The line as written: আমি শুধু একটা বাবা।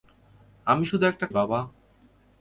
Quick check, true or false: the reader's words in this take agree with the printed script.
true